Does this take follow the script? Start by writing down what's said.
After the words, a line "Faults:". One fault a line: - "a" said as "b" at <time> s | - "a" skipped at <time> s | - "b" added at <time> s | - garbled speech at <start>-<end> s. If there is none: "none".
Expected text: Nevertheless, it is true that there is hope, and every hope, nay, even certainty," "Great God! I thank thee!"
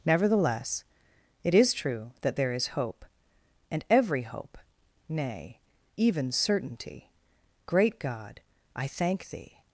Nevertheless, it is true that there is hope, and every hope, nay, even certainty," "Great God! I thank thee!"
Faults:
none